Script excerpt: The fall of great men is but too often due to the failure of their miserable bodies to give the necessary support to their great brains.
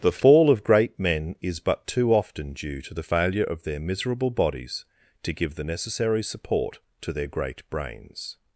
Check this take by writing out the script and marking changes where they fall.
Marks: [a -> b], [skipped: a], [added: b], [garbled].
The fall of great men is but too often due to the failure of their miserable bodies to give the necessary support to their great brains.